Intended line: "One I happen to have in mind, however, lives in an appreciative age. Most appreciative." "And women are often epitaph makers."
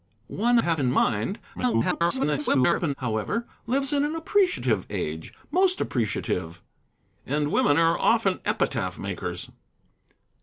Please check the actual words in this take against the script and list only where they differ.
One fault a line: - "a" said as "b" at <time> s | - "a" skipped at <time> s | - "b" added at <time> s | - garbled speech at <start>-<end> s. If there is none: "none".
- "I happen to" skipped at 0.6 s
- garbled speech at 1.5-2.9 s